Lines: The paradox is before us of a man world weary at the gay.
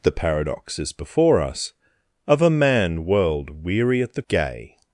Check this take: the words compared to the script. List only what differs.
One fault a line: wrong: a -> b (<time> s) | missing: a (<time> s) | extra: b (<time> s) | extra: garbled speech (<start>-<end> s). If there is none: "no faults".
no faults